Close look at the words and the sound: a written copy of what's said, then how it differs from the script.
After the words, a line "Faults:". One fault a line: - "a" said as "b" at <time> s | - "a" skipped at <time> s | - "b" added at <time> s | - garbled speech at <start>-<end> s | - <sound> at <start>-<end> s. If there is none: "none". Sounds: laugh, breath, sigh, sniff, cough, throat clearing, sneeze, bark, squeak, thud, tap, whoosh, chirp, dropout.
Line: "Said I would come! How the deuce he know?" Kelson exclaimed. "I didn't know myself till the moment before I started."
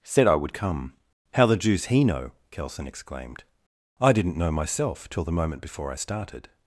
"Said I would come! How the deuce he know?" Kelson exclaimed. "I didn't know myself till the moment before I started."
Faults:
none